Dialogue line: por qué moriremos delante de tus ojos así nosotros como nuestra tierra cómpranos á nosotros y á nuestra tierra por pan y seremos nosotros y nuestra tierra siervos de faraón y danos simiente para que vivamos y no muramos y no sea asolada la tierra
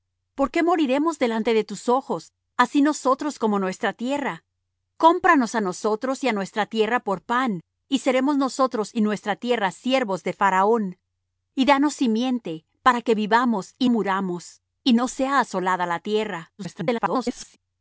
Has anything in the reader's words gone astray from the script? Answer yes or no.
yes